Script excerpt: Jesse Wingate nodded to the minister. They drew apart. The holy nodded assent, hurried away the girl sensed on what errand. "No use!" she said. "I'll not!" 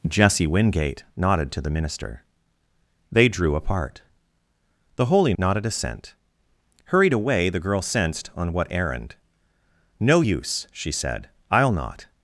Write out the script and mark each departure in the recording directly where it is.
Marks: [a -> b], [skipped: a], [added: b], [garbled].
Jesse Wingate nodded to the minister. They drew apart. The holy nodded assent, hurried away the girl sensed on what errand. "No use!" she said. "I'll not!"